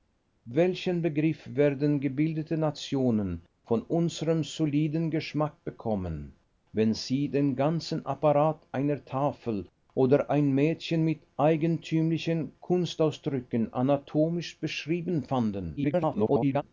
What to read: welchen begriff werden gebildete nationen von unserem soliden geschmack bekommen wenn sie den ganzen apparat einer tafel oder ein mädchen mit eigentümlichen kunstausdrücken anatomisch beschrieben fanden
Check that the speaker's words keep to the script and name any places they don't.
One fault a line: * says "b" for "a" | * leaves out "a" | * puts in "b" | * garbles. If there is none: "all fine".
* garbles